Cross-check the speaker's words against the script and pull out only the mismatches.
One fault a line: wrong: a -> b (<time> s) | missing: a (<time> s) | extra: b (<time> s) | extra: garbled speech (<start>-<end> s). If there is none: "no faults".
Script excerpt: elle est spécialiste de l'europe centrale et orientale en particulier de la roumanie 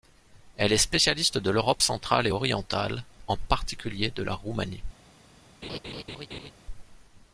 no faults